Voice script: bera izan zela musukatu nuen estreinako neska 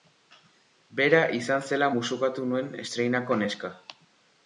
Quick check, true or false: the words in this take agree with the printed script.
true